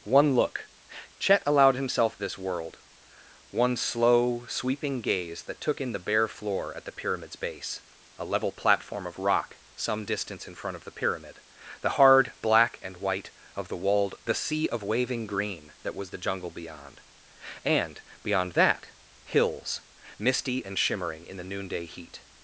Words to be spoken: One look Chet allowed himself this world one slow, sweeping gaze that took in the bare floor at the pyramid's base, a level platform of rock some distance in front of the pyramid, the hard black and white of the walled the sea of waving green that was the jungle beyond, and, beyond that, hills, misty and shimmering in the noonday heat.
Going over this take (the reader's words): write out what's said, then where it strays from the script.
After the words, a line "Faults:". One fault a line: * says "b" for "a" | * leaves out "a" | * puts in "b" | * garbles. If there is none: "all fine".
One look Chet allowed himself this world one slow, sweeping gaze that took in the bare floor at the pyramid's base, a level platform of rock some distance in front of the pyramid, the hard black and white of the walled the sea of waving green that was the jungle beyond, and, beyond that, hills, misty and shimmering in the noonday heat.
Faults:
all fine